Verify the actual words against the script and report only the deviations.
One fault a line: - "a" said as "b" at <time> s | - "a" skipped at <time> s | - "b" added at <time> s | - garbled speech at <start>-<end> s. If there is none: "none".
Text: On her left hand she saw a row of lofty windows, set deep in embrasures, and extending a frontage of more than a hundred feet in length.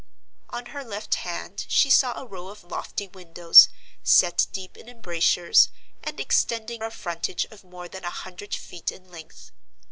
none